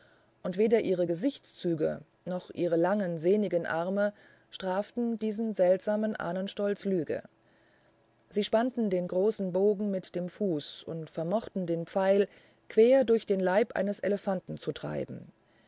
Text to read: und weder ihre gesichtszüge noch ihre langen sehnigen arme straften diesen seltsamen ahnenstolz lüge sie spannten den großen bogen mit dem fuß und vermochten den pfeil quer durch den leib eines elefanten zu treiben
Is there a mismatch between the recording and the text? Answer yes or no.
no